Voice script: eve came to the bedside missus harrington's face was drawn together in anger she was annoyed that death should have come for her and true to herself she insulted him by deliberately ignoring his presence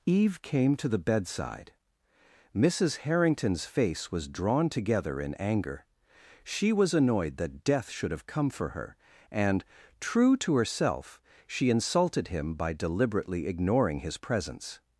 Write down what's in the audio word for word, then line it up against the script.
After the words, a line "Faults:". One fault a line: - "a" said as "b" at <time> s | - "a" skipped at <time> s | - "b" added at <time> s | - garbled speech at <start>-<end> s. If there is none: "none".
eve came to the bedside missus harrington's face was drawn together in anger she was annoyed that death should have come for her and true to herself she insulted him by deliberately ignoring his presence
Faults:
none